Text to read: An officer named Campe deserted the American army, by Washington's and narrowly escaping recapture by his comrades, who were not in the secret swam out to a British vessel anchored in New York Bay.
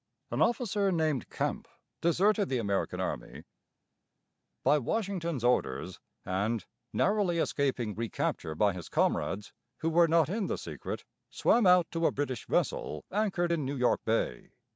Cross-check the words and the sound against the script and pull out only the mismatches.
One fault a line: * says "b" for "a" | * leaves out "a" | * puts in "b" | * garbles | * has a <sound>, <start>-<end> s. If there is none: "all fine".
* puts in "orders"